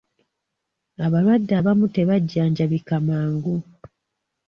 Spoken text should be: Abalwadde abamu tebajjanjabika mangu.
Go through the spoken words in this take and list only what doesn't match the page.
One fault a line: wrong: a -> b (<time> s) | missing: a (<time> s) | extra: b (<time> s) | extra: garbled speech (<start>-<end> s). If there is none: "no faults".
no faults